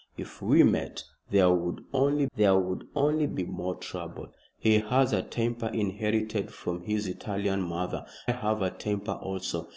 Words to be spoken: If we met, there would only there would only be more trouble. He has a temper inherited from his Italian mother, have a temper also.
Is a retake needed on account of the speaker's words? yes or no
no